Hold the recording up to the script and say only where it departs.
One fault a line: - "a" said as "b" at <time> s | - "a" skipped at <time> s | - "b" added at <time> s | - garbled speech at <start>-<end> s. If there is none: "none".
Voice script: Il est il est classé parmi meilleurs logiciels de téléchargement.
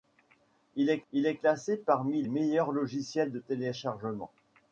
none